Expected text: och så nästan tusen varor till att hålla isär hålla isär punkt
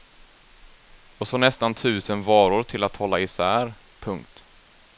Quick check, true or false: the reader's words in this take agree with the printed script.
false